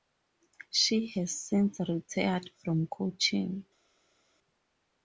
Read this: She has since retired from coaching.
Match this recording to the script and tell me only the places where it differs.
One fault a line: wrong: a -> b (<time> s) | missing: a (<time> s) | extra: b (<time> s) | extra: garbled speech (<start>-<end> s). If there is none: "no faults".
no faults